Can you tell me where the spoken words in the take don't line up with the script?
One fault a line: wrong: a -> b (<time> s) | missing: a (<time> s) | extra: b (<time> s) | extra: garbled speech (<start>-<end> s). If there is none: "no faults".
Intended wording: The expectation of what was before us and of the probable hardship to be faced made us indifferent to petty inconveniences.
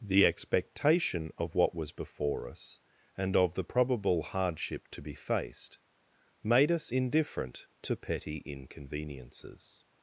no faults